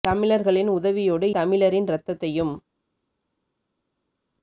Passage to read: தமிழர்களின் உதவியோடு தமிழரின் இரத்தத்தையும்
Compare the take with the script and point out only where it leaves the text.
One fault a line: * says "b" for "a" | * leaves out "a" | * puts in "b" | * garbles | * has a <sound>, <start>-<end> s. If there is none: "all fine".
all fine